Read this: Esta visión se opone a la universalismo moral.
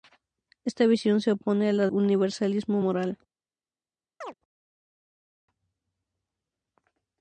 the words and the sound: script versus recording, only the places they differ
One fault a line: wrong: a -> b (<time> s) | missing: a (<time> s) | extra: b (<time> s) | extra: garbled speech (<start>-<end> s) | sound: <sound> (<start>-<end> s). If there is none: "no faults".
sound: chirp (4.2-4.3 s)